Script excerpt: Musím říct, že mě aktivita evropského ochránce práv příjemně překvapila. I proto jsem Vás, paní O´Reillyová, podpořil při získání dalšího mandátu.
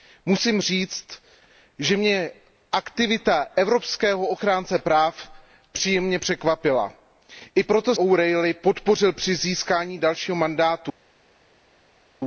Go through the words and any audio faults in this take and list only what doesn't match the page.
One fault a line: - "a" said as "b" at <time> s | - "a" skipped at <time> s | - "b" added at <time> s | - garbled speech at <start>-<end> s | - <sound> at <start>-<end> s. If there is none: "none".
- "jsem Vás paní" skipped at 8.0 s